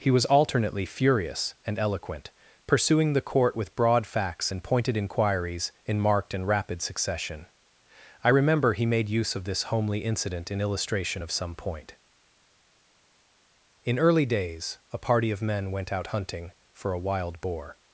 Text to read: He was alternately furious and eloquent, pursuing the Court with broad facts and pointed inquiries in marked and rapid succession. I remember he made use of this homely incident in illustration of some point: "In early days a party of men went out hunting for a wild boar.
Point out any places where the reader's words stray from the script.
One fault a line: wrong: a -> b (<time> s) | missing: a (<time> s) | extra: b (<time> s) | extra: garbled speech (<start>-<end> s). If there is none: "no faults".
no faults